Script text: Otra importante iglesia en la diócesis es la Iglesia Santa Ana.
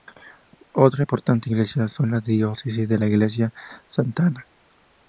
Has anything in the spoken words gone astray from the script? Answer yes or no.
no